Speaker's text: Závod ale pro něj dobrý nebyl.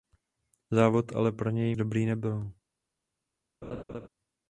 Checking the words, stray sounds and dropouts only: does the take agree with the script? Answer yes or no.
no